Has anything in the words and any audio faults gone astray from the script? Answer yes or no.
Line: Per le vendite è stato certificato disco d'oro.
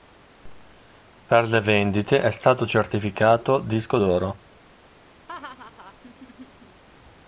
yes